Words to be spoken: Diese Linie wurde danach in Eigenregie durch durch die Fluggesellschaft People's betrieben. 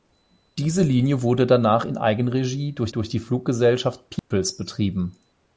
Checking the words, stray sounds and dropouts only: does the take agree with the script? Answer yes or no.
no